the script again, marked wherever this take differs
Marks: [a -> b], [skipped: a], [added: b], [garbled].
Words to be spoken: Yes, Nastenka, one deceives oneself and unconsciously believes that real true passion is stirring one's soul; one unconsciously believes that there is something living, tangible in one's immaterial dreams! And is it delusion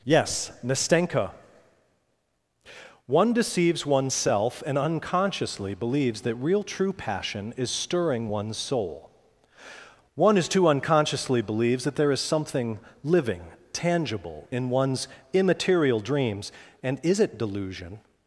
Yes, Nastenka, one deceives oneself and unconsciously believes that real true passion is stirring one's soul; one [added: is too] unconsciously believes that there is something living, tangible in one's immaterial dreams! And is it delusion